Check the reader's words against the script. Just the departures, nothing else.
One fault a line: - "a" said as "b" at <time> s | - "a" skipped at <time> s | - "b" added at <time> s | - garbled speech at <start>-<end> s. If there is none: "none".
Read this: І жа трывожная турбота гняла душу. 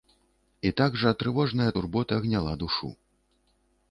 - "так" added at 0.8 s